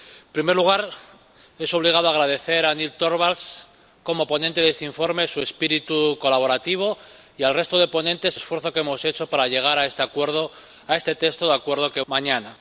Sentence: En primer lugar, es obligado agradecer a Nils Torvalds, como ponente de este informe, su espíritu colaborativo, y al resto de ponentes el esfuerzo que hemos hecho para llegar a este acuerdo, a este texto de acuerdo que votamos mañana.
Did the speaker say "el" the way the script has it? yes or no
no